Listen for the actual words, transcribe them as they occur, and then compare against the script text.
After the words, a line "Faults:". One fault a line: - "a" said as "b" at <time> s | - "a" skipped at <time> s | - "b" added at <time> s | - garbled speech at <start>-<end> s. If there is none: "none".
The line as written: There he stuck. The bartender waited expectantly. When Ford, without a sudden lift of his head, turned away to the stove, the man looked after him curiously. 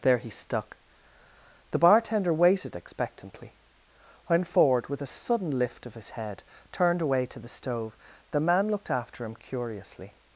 There he stuck. The bartender waited expectantly. When Ford, with a sudden lift of his head, turned away to the stove, the man looked after him curiously.
Faults:
- "without" said as "with" at 4.9 s